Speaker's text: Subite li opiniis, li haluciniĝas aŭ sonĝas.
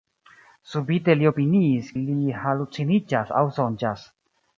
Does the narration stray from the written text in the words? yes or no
no